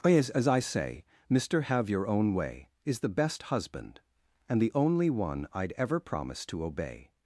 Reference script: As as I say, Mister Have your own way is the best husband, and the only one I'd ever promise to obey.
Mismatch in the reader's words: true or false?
false